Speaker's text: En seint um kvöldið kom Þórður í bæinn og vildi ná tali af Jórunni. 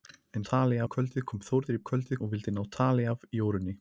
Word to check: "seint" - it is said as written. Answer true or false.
false